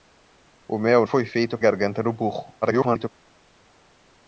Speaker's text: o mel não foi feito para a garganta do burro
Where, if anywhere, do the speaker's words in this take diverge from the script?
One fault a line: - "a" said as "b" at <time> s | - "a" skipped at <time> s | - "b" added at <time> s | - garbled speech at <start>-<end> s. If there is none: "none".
- "não" skipped at 1.1 s
- "para" skipped at 1.6 s
- garbled speech at 2.6-3.1 s